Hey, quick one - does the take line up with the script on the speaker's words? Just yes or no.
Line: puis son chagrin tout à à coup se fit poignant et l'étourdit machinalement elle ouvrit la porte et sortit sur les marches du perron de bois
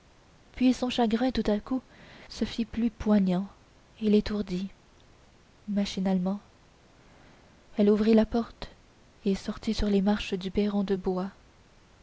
no